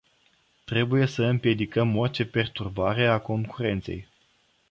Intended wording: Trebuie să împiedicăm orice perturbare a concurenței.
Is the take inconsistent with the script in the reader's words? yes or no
no